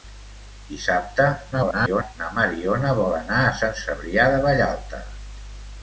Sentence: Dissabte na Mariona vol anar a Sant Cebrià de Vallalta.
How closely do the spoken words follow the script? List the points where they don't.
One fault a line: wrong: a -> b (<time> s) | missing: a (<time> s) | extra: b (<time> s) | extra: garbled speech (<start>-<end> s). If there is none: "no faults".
extra: garbled speech (1.5-2.2 s)